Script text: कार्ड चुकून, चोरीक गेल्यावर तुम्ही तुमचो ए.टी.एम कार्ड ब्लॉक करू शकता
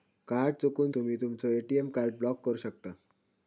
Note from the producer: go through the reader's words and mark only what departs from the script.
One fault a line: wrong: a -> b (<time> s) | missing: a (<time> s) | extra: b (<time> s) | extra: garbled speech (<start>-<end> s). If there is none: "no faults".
missing: चोरीक गेल्यावर (0.9 s)